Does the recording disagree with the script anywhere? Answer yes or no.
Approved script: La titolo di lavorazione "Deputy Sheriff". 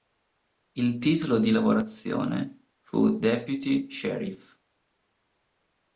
yes